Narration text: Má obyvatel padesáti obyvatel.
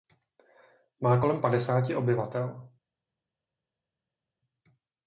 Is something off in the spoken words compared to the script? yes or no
yes